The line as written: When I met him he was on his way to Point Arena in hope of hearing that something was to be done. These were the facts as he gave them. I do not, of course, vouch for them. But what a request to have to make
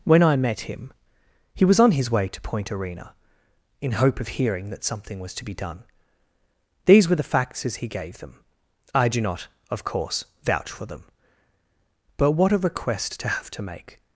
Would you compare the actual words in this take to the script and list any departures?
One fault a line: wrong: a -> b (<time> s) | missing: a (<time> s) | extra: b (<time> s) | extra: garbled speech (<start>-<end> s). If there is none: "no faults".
no faults